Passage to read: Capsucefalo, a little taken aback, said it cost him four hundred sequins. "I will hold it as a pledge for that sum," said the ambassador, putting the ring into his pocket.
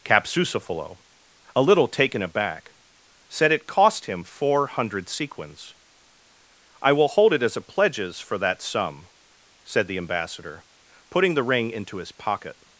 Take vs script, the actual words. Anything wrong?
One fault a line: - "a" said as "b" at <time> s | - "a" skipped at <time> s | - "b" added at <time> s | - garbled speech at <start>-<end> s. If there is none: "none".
- "pledge" said as "pledges" at 7.6 s